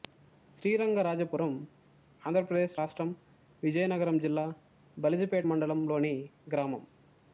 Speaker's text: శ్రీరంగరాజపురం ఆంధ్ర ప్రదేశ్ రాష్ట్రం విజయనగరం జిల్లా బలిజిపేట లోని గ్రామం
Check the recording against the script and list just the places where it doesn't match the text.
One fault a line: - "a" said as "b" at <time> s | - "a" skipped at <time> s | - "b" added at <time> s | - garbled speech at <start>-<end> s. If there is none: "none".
- "మండలం" added at 5.4 s